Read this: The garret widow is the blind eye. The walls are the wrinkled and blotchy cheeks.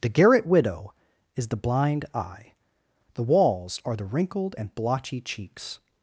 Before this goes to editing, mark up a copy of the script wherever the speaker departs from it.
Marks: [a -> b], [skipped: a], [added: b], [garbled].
The garret widow is the blind eye. The walls are the wrinkled and blotchy cheeks.